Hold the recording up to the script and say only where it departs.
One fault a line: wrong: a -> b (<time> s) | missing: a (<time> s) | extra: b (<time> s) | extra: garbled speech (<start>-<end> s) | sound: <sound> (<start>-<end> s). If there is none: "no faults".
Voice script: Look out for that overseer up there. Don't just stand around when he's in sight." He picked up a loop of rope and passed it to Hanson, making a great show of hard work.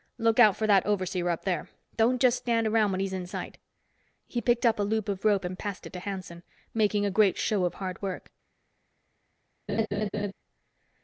sound: laugh (9.7-10.3 s)